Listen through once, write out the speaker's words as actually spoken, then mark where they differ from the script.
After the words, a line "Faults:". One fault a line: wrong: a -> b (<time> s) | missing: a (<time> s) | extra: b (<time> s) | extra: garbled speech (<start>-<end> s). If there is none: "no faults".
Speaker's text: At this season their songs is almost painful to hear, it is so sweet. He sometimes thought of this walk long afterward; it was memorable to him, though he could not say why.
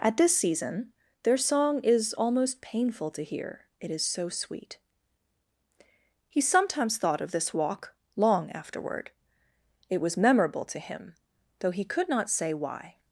At this season their song is almost painful to hear, it is so sweet. He sometimes thought of this walk long afterward; it was memorable to him, though he could not say why.
Faults:
wrong: songs -> song (1.4 s)